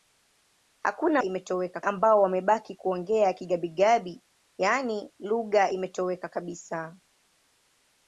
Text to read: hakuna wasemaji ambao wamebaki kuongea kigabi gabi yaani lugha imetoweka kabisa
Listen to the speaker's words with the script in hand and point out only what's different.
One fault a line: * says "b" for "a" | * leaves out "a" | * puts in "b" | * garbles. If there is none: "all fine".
* says "imetoweka" for "wasemaji"